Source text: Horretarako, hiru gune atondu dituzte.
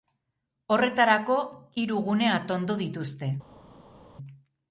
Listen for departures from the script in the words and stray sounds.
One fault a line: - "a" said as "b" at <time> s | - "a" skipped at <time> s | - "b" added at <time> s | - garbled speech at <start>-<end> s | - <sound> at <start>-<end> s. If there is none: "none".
none